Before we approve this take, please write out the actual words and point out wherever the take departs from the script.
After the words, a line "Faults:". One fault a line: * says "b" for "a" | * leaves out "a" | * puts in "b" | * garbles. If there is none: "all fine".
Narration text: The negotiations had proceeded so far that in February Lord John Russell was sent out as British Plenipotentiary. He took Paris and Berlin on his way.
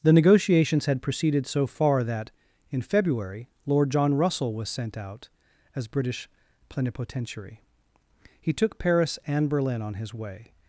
The negotiations had proceeded so far that in February Lord John Russell was sent out as British Plenipotentiary. He took Paris and Berlin on his way.
Faults:
all fine